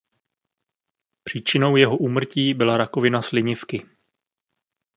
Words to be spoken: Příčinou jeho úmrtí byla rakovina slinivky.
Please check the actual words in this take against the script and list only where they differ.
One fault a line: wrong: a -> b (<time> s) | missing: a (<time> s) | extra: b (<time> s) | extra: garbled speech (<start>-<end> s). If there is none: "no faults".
no faults